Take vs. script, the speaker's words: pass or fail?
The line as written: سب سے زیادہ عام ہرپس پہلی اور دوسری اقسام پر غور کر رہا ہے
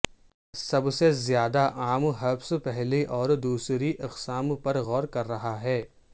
pass